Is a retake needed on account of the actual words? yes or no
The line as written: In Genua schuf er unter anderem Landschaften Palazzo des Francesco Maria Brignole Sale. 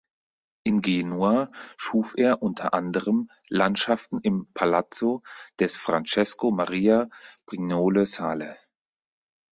yes